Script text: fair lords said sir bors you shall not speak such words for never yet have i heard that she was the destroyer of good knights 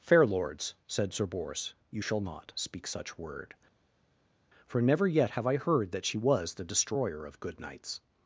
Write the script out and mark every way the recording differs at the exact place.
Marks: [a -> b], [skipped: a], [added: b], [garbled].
fair lords said sir bors you shall not speak such [words -> word] for never yet have i heard that she was the destroyer of good knights